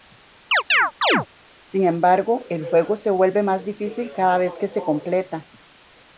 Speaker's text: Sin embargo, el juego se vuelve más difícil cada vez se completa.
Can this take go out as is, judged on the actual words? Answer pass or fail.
fail